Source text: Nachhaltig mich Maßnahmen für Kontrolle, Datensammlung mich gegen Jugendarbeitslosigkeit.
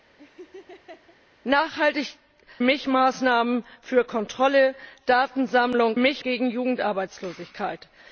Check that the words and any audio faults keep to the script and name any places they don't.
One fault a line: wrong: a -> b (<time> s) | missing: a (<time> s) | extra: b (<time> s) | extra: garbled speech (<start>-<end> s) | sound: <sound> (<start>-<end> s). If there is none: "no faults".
sound: laugh (0.2-1.2 s)